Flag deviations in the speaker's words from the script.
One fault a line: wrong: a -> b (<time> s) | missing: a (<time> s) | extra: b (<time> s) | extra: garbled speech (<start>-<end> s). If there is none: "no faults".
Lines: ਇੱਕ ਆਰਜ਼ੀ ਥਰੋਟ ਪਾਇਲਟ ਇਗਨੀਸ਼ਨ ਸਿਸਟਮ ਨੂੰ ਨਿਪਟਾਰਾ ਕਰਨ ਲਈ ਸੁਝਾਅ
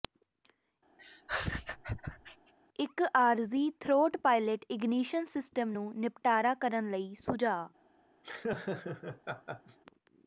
no faults